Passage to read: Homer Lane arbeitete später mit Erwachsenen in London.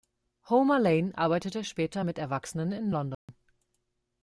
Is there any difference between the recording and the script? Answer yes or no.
no